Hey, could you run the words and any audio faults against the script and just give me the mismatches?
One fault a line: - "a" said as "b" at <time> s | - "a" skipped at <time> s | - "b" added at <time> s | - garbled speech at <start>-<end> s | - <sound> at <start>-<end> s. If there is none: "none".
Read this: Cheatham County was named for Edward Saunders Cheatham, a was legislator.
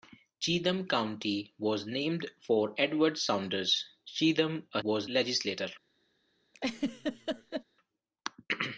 - laugh at 6.5-7.6 s